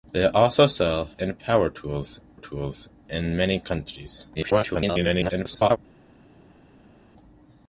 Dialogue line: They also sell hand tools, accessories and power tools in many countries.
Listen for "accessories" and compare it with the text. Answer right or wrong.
wrong